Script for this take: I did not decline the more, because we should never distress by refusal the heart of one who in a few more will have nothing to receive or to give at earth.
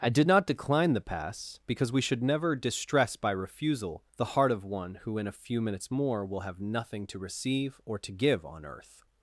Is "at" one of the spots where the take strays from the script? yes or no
yes